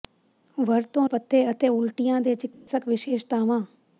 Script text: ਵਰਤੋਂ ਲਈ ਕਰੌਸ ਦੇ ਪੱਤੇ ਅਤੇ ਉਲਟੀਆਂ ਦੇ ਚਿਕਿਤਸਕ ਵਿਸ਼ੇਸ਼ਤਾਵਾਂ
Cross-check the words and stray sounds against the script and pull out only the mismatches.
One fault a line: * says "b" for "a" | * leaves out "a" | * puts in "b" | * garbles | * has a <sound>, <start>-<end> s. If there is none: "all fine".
* leaves out "ਲਈ ਕਰੌਸ ਦੇ"
* has a dropout, 2.5-2.7 s